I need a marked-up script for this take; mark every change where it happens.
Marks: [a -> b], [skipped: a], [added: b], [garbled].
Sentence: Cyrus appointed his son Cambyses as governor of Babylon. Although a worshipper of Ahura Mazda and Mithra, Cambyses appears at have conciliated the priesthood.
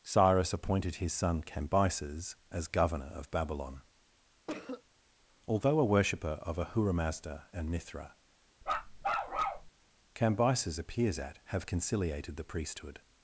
Cyrus appointed his son Cambyses as governor of Babylon. Although a worshipper of Ahura Mazda and Mithra, Cambyses appears at have conciliated the priesthood.